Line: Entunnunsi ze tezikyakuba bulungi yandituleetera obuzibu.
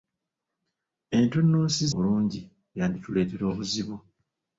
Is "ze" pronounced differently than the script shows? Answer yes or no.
yes